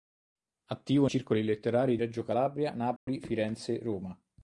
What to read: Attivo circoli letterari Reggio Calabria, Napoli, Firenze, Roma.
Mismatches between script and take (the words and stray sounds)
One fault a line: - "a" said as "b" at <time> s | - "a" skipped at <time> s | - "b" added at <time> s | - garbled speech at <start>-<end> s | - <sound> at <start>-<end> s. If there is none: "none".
- dropout at 3.0-3.1 s